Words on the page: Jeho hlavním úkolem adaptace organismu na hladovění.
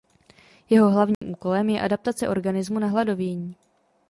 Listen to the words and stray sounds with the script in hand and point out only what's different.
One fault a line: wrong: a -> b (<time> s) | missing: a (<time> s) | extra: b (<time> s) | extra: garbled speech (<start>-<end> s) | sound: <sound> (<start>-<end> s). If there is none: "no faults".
sound: dropout (1.1-1.2 s)
extra: je (1.7 s)